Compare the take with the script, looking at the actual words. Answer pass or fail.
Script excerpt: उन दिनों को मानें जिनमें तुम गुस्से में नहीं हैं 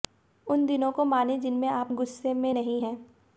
fail